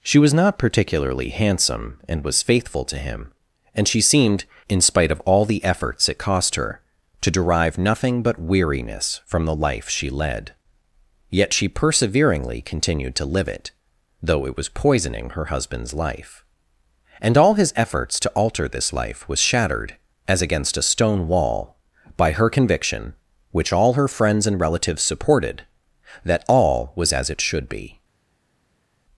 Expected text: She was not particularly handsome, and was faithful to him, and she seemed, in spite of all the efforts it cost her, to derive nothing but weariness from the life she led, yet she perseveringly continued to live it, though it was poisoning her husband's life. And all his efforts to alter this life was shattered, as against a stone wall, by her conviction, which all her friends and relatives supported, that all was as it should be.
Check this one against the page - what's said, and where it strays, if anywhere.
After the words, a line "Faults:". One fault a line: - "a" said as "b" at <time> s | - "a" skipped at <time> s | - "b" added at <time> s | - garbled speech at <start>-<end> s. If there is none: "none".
She was not particularly handsome, and was faithful to him, and she seemed, in spite of all the efforts it cost her, to derive nothing but weariness from the life she led, yet she perseveringly continued to live it, though it was poisoning her husband's life. And all his efforts to alter this life was shattered, as against a stone wall, by her conviction, which all her friends and relatives supported, that all was as it should be.
Faults:
none